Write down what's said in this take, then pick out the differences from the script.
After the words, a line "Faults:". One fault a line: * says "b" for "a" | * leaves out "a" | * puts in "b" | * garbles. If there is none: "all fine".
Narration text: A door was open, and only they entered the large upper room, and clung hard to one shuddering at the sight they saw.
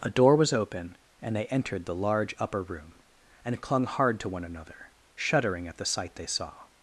A door was open, and they entered the large upper room, and clung hard to one another, shuddering at the sight they saw.
Faults:
* leaves out "only"
* puts in "another"